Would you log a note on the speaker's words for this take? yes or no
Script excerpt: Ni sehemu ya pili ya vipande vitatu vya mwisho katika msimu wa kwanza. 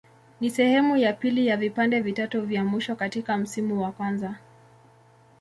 no